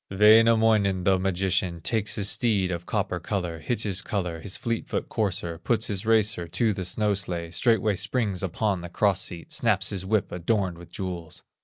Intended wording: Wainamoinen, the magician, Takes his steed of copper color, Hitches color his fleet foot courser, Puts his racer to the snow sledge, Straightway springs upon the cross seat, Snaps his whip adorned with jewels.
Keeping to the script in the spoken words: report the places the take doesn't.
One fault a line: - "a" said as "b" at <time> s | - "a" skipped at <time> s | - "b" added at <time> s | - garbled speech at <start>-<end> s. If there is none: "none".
none